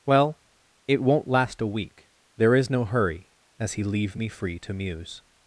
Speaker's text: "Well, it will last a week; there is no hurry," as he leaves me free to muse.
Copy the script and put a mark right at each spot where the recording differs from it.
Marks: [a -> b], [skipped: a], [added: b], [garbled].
"Well, it [will -> won't] last a week; there is no hurry," as he [leaves -> leave] me free to muse.